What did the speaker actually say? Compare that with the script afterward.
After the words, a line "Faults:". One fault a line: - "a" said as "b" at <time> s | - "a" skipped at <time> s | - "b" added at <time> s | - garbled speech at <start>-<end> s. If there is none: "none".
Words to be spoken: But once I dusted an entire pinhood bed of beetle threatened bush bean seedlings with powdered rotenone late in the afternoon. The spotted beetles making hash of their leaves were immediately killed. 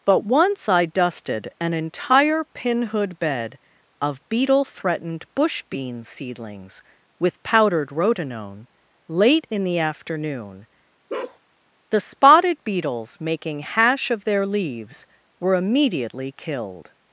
But once I dusted an entire pinhood bed of beetle threatened bush bean seedlings with powdered rotenone late in the afternoon. The spotted beetles making hash of their leaves were immediately killed.
Faults:
none